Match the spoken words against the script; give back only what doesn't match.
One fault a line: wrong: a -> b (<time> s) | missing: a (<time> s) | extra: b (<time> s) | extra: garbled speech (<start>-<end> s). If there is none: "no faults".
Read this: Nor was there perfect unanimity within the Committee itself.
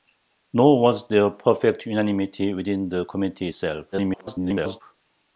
extra: garbled speech (3.9-4.8 s)